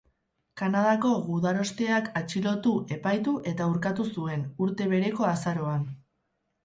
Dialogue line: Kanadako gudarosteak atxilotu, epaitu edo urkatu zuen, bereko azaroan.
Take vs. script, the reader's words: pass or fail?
fail